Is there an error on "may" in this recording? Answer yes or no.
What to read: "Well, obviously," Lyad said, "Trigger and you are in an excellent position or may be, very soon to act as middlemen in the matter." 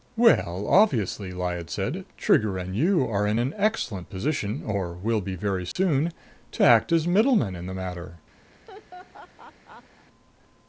yes